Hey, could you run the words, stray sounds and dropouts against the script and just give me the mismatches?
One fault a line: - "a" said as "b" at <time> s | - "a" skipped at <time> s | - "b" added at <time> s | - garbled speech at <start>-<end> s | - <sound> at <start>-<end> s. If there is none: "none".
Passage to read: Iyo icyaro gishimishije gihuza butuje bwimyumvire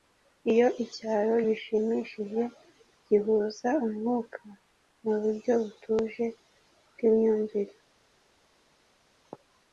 - "umwuka muburyo" added at 3.9 s